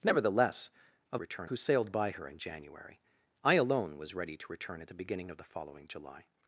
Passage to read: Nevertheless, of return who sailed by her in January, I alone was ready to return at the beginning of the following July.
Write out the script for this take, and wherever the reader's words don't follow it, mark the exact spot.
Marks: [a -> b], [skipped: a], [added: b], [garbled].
Nevertheless, of return who sailed by her in January, I alone was ready to return at the beginning of the following July.